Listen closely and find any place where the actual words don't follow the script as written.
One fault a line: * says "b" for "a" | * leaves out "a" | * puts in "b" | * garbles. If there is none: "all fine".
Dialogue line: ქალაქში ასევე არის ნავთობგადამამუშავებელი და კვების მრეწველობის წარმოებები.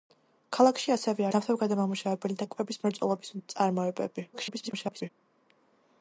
* leaves out "არის"
* garbles